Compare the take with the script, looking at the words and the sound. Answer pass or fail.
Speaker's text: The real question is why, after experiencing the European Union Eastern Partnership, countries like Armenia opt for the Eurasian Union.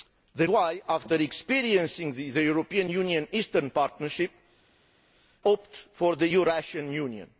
fail